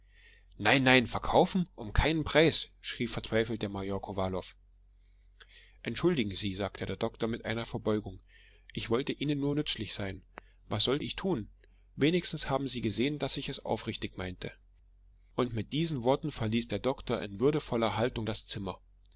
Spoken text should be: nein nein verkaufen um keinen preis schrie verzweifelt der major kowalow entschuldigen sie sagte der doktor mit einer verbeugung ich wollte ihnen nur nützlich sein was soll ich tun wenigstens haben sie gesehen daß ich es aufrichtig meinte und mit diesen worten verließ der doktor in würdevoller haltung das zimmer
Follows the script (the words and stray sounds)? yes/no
yes